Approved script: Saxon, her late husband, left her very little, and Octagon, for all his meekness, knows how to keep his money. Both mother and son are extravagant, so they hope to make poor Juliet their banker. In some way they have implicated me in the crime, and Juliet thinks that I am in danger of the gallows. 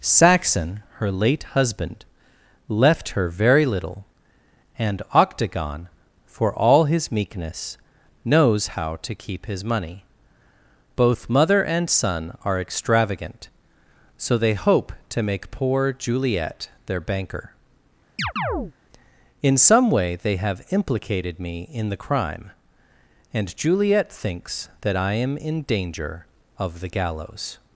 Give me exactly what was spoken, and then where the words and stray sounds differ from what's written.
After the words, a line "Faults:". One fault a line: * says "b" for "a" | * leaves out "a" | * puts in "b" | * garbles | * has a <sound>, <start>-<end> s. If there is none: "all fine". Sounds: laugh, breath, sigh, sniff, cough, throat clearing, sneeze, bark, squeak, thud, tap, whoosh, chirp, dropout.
Saxon, her late husband, left her very little, and Octagon, for all his meekness, knows how to keep his money. Both mother and son are extravagant, so they hope to make poor Juliet their banker. In some way they have implicated me in the crime, and Juliet thinks that I am in danger of the gallows.
Faults:
* has a chirp, 18.2-18.7 s